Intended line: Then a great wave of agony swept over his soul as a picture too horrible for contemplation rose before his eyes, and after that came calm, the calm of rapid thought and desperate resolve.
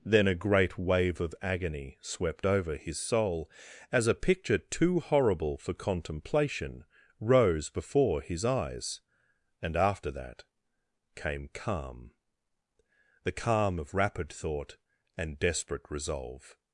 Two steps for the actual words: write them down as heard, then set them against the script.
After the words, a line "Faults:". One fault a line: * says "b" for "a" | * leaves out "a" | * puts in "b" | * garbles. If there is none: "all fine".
Then a great wave of agony swept over his soul as a picture too horrible for contemplation rose before his eyes, and after that came calm, the calm of rapid thought and desperate resolve.
Faults:
all fine